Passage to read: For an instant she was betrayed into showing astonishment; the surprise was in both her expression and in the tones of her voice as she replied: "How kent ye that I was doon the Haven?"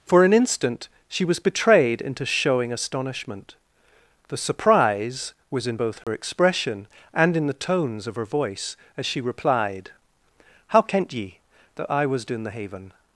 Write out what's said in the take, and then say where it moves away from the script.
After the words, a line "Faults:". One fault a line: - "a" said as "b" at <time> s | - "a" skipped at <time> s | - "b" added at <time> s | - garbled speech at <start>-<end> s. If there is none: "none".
For an instant she was betrayed into showing astonishment; the surprise was in both her expression and in the tones of her voice as she replied: "How kent ye that I was doon the Haven?"
Faults:
none